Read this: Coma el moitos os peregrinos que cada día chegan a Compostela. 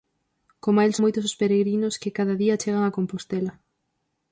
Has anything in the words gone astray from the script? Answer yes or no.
no